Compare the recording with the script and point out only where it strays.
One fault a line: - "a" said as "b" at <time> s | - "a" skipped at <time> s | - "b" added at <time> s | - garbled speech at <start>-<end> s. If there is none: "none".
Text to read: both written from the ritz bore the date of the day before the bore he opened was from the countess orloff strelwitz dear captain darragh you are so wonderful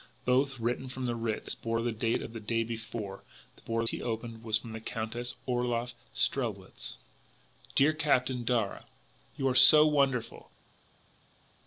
none